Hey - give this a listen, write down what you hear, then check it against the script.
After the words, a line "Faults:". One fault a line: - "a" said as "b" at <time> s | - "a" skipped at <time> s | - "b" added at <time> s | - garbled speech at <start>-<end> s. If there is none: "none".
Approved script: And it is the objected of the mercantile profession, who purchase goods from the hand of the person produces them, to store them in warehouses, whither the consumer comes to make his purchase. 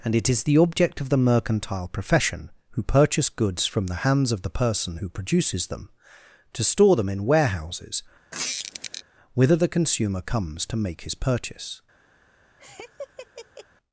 And it is the object of the mercantile profession, who purchase goods from the hands of the person who produces them, to store them in warehouses, whither the consumer comes to make his purchase.
Faults:
- "objected" said as "object" at 0.6 s
- "hand" said as "hands" at 4.0 s
- "who" added at 5.0 s